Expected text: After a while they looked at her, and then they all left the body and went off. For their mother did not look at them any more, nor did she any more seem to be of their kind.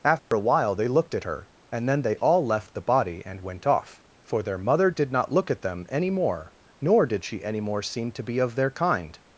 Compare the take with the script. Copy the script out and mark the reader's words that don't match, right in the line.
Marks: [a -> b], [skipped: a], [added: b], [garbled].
After a while they looked at her, and then they all left the body and went off. For their mother did not look at them any more, nor did she any more seem to be of their kind.